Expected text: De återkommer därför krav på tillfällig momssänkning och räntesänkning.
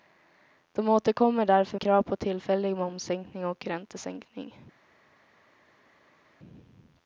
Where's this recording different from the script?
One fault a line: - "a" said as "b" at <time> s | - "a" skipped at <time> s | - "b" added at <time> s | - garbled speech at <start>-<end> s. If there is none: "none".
none